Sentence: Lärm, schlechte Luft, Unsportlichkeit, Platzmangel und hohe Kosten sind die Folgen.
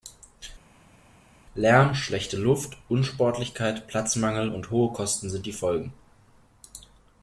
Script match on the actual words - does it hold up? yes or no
yes